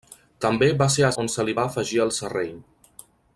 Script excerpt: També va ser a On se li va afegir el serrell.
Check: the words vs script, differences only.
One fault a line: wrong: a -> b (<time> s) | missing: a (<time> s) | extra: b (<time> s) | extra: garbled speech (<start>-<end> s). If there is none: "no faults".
no faults